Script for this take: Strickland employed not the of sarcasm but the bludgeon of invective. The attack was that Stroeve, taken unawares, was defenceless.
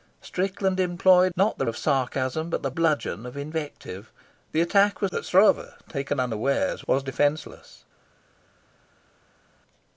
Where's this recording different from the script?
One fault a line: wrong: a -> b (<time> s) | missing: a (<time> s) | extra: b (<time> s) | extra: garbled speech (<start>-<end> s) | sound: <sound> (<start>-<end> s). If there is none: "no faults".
no faults